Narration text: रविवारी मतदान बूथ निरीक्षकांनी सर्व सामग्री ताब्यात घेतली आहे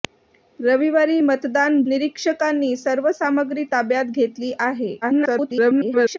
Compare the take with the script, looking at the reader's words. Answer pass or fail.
fail